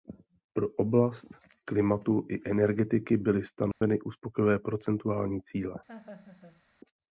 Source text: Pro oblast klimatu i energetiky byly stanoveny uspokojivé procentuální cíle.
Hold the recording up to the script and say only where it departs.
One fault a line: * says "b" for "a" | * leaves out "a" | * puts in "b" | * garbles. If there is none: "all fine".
all fine